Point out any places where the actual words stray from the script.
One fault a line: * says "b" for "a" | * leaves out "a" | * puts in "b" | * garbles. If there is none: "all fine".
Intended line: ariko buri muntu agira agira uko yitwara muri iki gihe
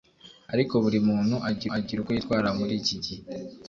all fine